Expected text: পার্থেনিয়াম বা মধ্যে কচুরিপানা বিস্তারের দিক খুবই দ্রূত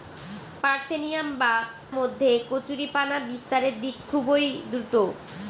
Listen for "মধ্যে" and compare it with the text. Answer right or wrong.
right